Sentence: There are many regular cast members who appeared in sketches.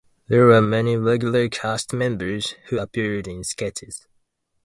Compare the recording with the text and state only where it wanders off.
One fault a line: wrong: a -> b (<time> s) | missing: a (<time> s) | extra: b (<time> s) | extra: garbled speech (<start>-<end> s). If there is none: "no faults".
wrong: are -> were (0.5 s)